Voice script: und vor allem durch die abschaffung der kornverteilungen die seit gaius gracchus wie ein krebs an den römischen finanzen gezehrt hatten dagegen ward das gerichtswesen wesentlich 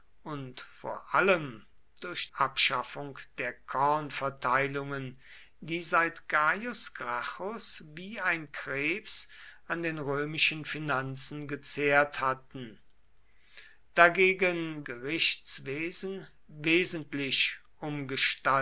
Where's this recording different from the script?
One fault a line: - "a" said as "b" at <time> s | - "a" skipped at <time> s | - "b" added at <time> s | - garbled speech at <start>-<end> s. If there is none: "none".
- "die" skipped at 2.3 s
- "ward das" skipped at 14.9 s